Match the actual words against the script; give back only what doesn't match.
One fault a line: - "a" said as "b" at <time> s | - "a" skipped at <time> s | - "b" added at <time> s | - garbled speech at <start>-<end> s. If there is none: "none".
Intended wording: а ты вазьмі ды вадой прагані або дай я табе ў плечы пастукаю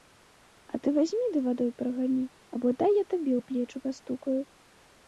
none